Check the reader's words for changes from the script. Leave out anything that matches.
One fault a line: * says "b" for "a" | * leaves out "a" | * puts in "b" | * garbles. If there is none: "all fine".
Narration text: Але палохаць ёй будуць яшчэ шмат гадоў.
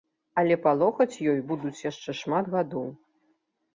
all fine